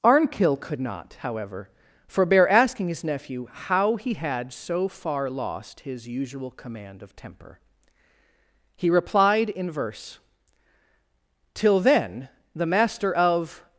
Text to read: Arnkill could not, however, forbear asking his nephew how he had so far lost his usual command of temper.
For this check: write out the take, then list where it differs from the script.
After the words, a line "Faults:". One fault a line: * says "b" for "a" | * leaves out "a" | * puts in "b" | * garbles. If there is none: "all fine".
Arnkill could not, however, forbear asking his nephew how he had so far lost his usual command of temper. He replied in verse "Till then, the master of
Faults:
* puts in "He replied in verse Till then the master of"